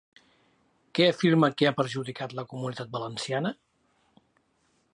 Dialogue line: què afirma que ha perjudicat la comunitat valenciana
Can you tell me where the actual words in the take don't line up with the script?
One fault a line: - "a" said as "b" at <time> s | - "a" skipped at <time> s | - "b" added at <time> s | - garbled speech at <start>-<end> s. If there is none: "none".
none